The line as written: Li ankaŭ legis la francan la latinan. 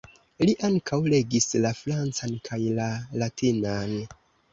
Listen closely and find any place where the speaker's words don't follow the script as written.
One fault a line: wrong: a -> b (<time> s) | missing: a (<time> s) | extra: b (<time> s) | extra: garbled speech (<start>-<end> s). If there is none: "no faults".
extra: kaj (2.5 s)